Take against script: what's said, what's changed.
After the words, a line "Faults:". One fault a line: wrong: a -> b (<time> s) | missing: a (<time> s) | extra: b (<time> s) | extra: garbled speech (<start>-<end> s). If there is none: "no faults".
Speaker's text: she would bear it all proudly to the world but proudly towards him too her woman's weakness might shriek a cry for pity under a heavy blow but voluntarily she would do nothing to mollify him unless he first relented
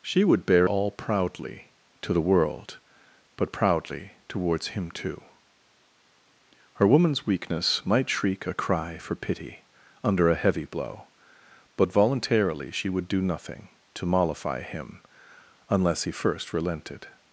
she would bear all proudly to the world but proudly towards him too her woman's weakness might shriek a cry for pity under a heavy blow but voluntarily she would do nothing to mollify him unless he first relented
Faults:
missing: it (0.7 s)